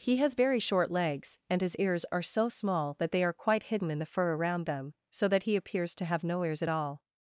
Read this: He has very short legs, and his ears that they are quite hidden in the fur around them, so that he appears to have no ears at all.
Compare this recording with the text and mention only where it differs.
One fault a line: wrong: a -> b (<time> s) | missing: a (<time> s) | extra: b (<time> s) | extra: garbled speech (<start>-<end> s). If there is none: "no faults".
extra: are so small (2.1 s)